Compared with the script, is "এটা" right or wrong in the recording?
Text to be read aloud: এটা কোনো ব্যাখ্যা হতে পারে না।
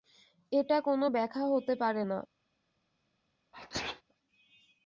right